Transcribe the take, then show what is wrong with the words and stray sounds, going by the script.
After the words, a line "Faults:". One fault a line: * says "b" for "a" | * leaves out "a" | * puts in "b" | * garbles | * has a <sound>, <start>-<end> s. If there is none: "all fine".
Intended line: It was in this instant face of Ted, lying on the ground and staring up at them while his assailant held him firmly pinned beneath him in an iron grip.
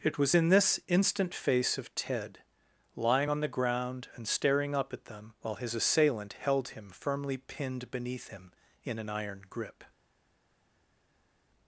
It was in this instant face of Ted, lying on the ground and staring up at them while his assailant held him firmly pinned beneath him in an iron grip.
Faults:
all fine